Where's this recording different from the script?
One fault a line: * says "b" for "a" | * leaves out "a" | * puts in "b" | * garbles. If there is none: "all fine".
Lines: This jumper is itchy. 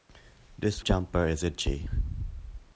all fine